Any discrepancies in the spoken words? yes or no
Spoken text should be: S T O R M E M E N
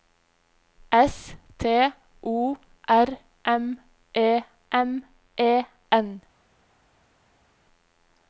no